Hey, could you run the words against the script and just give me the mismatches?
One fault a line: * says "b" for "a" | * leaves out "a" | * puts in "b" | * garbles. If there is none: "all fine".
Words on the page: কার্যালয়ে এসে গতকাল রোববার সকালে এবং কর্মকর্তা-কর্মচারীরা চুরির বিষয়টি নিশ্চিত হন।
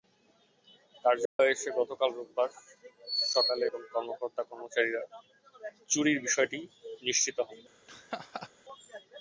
all fine